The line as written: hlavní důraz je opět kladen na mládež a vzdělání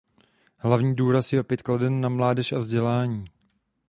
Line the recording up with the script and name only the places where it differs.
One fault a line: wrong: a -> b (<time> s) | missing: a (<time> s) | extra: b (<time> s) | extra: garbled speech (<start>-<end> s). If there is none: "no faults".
no faults